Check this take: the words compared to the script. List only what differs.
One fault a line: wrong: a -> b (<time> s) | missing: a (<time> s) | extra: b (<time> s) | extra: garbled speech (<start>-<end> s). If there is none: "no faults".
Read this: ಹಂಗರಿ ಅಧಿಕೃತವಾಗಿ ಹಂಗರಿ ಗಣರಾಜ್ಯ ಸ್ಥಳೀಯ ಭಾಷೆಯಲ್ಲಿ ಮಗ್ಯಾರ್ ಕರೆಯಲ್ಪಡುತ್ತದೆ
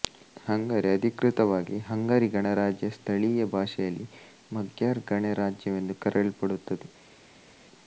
extra: ಗಣರಾಜ್ಯವೆಂದು (5.1 s)